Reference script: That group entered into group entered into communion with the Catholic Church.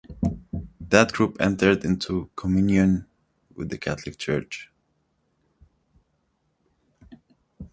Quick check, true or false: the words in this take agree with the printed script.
false